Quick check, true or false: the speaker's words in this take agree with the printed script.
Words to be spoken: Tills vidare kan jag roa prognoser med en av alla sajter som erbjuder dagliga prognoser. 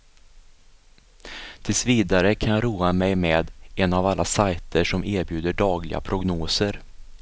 false